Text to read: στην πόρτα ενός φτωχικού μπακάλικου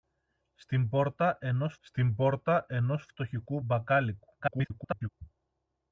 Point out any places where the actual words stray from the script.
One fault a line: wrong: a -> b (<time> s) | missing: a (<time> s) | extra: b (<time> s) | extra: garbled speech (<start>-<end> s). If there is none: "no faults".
extra: στην πόρτα ενός (1.8 s)
extra: garbled speech (4.4-5.1 s)